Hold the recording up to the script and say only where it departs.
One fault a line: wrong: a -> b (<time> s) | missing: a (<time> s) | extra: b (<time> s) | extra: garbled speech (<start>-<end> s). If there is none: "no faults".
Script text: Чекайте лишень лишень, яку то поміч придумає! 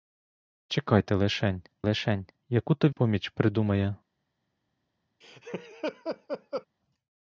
no faults